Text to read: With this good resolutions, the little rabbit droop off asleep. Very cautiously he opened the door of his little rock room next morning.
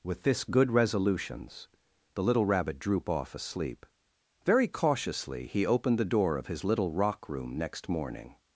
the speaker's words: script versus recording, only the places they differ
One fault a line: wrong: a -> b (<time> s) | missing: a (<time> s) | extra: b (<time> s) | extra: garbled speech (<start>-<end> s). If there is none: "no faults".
no faults